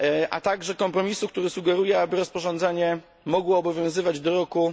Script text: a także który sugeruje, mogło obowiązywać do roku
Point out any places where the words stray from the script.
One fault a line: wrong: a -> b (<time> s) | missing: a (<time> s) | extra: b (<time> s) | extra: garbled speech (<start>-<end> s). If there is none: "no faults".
extra: kompromisu (0.8 s)
extra: aby rozporządzenie (2.0 s)